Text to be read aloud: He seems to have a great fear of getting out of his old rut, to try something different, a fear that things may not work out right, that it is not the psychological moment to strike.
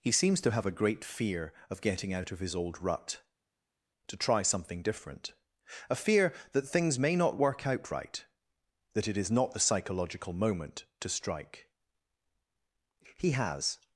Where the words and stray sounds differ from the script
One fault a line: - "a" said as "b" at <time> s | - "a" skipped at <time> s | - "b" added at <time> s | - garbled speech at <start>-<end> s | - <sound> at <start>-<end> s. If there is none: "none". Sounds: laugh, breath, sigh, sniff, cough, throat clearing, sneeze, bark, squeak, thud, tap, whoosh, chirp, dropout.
- "He has" added at 13.2 s